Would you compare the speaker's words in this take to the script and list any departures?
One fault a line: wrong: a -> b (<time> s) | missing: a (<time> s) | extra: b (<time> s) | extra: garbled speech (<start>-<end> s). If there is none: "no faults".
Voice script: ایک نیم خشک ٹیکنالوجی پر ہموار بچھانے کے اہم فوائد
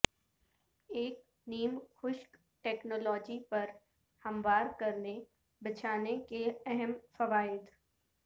extra: کرنے (4.8 s)